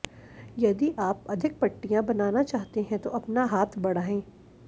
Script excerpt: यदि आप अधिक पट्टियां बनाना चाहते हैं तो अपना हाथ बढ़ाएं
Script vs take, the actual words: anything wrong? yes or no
no